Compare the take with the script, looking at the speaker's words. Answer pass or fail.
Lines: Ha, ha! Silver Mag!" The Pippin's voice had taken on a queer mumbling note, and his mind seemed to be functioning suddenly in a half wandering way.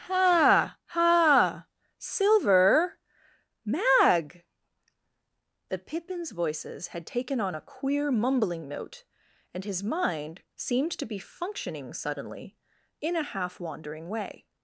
fail